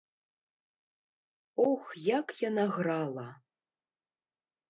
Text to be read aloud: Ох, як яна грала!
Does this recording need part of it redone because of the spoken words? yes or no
no